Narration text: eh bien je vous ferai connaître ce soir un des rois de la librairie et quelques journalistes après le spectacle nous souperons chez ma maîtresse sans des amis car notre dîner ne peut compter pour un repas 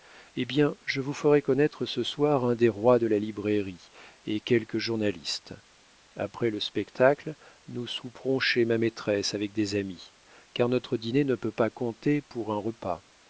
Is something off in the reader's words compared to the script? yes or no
yes